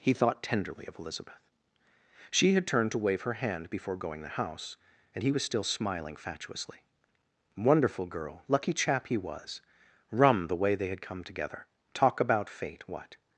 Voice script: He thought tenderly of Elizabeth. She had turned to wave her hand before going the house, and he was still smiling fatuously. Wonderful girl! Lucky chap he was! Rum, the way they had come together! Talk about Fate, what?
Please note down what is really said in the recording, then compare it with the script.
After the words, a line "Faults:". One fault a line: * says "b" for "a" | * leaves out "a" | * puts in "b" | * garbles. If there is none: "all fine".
He thought tenderly of Elizabeth. She had turned to wave her hand before going the house, and he was still smiling fatuously. Wonderful girl! Lucky chap he was! Rum, the way they had come together! Talk about Fate, what?
Faults:
all fine